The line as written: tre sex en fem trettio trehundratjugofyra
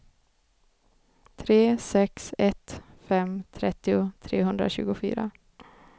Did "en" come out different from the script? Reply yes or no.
yes